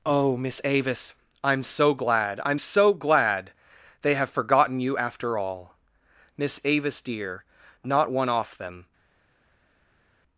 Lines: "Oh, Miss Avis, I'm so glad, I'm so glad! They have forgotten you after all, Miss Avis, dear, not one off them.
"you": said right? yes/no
yes